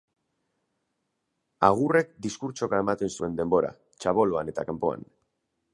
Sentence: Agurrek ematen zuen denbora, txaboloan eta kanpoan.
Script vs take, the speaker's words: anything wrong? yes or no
yes